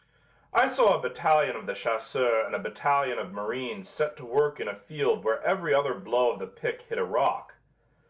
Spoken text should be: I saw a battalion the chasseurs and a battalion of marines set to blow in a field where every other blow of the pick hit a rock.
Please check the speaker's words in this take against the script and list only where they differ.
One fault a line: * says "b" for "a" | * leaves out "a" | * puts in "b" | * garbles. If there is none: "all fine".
* puts in "of"
* says "work" for "blow"